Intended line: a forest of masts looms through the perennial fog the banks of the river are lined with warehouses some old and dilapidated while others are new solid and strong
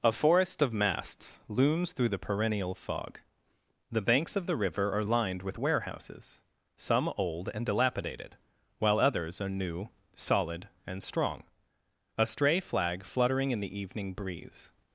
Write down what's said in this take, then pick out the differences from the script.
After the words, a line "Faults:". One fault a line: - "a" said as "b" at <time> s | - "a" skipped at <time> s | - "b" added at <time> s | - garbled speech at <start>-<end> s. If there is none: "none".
a forest of masts looms through the perennial fog the banks of the river are lined with warehouses some old and dilapidated while others are new solid and strong a stray flag fluttering in the evening breeze
Faults:
- "a stray flag fluttering in the evening breeze" added at 12.2 s